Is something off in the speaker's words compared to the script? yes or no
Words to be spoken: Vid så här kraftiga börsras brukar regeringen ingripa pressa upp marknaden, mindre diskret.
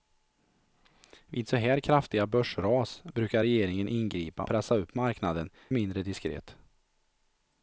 no